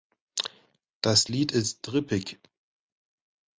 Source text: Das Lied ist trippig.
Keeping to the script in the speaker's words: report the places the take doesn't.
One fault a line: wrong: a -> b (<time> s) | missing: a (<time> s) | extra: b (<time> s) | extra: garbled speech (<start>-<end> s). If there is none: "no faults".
no faults